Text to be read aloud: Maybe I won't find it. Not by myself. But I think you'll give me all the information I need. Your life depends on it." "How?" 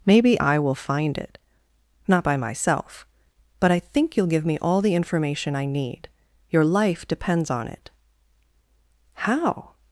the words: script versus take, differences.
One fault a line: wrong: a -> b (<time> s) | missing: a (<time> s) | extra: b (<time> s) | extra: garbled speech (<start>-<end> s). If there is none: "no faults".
wrong: won't -> will (0.6 s)